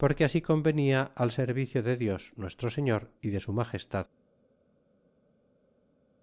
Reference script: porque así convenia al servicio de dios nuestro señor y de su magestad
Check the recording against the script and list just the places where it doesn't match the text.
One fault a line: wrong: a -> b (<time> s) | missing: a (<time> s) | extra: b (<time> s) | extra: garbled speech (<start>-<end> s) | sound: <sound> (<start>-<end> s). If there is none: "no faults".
no faults